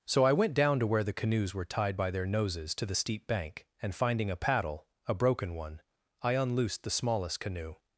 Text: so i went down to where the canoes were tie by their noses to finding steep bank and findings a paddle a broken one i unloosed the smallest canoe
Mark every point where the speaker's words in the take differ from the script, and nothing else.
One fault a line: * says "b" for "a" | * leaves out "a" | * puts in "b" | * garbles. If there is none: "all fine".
* says "tied" for "tie"
* says "the" for "finding"
* says "finding" for "findings"